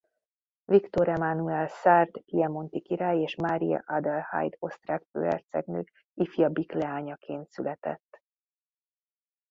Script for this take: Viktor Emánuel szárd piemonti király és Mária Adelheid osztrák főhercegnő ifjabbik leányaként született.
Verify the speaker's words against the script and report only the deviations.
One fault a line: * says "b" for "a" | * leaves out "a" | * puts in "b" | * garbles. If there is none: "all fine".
all fine